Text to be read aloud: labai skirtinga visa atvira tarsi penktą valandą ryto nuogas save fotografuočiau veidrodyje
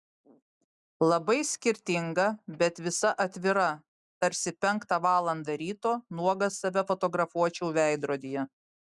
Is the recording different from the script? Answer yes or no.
yes